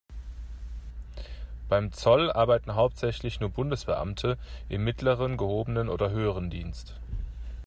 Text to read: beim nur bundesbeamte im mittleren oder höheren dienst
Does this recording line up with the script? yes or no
no